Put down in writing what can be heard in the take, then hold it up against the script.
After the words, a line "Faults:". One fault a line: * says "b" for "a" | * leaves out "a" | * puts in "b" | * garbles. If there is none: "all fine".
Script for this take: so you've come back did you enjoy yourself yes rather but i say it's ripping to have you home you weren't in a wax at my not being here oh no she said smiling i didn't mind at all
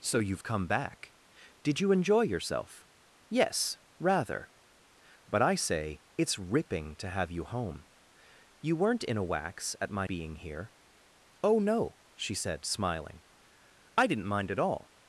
so you've come back did you enjoy yourself yes rather but i say it's ripping to have you home you weren't in a wax at my being here oh no she said smiling i didn't mind at all
Faults:
* leaves out "not"